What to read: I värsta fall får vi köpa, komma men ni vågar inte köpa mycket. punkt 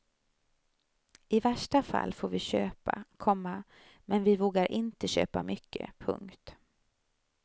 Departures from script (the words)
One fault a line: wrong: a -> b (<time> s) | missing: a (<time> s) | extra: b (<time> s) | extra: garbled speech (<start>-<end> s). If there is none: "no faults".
wrong: ni -> vi (4.2 s)